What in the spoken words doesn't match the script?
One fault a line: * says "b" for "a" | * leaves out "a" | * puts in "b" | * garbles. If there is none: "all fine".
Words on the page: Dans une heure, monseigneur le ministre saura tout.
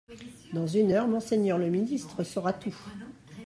all fine